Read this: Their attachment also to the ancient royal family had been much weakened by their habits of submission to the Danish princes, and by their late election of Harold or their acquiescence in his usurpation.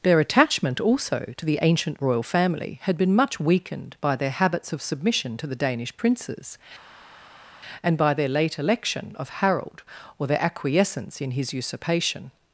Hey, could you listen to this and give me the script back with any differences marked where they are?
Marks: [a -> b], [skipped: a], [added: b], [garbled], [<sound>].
Their attachment also to the ancient royal family had been much weakened by their habits of submission to the Danish princes, and by their late election of Harold or their acquiescence in his usurpation.